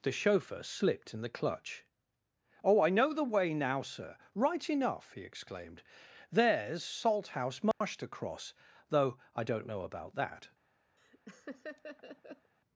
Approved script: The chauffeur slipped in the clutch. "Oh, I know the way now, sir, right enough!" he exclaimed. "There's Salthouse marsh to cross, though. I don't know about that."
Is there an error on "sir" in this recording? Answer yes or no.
no